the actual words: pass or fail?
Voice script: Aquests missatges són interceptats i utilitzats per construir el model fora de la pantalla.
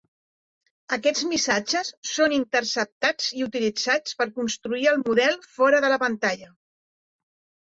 pass